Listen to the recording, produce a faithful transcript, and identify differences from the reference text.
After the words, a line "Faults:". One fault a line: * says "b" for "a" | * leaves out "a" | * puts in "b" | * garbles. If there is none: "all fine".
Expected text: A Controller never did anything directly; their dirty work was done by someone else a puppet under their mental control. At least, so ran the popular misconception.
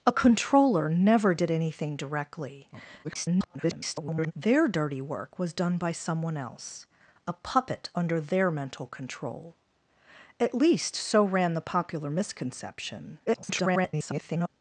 A Controller never did anything directly; [garbled] their dirty work was done by someone else a puppet under their mental control. At least, so ran the popular misconception. [garbled]
Faults:
* garbles
* garbles